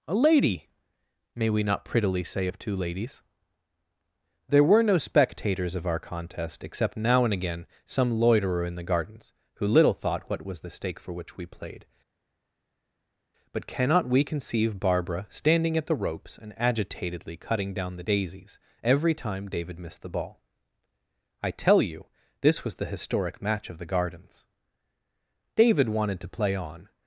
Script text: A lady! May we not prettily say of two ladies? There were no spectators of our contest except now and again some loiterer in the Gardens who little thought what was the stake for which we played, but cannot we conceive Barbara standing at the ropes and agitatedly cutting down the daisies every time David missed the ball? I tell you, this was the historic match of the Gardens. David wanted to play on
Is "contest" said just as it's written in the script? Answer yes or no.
yes